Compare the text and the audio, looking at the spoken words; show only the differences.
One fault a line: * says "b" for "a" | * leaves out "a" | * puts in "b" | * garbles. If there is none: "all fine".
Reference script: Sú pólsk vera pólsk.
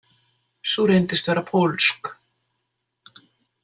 * says "reyndist" for "pólsk"